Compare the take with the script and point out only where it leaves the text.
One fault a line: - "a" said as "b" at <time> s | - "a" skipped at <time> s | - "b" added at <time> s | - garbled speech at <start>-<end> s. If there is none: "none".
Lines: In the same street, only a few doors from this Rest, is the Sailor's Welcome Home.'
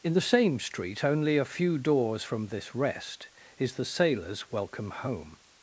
none